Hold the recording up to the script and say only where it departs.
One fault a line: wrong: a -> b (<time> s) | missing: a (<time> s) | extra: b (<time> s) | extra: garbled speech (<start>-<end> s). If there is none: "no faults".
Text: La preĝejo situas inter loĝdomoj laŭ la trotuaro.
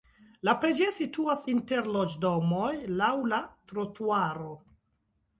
no faults